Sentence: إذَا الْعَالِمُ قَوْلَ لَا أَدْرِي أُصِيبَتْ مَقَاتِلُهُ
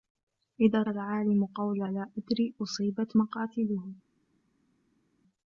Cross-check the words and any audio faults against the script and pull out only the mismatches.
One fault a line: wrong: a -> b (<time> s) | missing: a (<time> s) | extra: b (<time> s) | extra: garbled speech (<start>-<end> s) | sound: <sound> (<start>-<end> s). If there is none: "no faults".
no faults